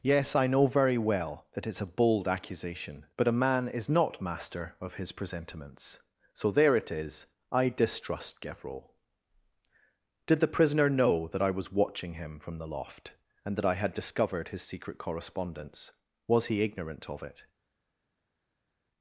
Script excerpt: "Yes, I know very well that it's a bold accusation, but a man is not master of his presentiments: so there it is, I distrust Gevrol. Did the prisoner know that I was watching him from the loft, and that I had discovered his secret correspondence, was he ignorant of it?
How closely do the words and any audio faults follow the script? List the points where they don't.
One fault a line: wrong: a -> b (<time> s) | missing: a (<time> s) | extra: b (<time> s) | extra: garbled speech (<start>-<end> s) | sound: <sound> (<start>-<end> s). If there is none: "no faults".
no faults